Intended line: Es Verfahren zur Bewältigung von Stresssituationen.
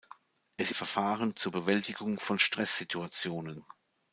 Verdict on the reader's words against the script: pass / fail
pass